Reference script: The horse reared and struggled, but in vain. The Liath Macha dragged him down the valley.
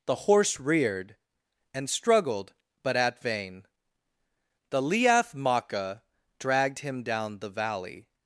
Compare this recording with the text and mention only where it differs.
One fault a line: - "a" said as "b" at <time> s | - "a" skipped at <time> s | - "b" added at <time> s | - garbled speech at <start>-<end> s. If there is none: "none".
- "in" said as "at" at 3.0 s